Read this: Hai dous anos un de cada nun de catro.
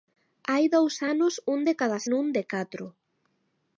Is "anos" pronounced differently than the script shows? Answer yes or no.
no